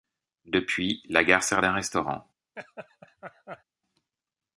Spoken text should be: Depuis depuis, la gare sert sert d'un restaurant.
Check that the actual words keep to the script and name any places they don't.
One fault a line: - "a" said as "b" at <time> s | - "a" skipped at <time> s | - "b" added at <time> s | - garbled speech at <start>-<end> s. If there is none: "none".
- "depuis" skipped at 1.0 s
- "sert" skipped at 1.6 s